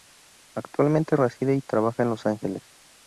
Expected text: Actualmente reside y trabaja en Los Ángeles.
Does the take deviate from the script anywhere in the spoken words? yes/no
no